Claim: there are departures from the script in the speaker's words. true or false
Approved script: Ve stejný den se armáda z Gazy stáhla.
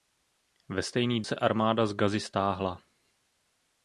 true